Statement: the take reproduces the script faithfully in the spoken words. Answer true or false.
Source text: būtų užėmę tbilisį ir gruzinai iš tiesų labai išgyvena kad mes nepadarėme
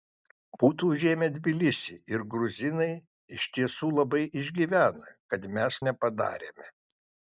true